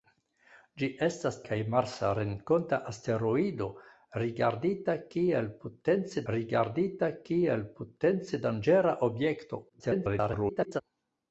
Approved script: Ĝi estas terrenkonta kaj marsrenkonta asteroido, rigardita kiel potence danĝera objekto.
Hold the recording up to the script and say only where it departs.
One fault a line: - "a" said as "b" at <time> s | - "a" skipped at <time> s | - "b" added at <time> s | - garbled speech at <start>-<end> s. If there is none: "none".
- "terrenkonta" skipped at 1.4 s
- "rigardita kiel potence" added at 6.3 s
- garbled speech at 9.7-10.8 s